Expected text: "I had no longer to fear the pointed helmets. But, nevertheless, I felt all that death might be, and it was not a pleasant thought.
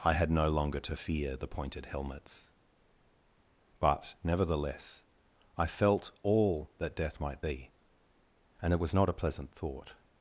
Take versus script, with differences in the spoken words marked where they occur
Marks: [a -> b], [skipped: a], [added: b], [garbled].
"I had no longer to fear the pointed helmets. But, nevertheless, I felt all that death might be, and it was not a pleasant thought.